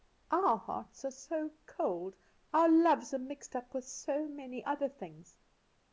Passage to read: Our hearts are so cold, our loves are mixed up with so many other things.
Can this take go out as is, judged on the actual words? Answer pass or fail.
pass